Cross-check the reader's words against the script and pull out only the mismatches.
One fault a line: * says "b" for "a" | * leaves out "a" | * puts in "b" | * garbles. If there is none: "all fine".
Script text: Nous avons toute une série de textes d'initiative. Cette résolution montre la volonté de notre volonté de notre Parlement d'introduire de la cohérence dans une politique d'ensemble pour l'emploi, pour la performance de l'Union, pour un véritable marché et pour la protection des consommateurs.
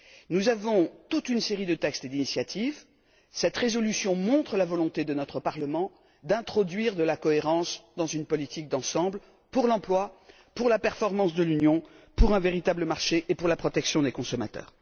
* leaves out "volonté de notre"